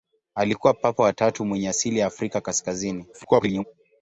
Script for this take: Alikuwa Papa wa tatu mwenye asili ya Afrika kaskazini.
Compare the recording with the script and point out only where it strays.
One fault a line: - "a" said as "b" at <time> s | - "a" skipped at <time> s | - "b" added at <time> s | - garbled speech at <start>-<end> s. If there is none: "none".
- garbled speech at 3.1-3.6 s